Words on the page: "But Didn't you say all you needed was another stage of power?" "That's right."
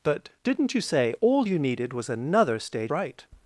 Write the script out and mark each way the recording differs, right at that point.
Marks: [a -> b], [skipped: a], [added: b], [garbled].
"But Didn't you say all you needed was another stage [skipped: of power?" "That's] right."